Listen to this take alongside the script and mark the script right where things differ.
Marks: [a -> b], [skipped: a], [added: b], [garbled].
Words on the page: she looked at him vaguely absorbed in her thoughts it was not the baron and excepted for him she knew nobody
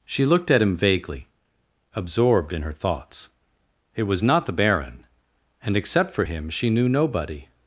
she looked at him vaguely absorbed in her thoughts it was not the baron and [excepted -> except] for him she knew nobody